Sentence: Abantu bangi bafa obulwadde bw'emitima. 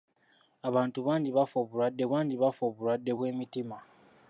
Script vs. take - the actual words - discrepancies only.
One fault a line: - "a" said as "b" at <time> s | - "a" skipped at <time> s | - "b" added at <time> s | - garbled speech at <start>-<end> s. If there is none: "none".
- "bangi bafa obulwadde" added at 2.1 s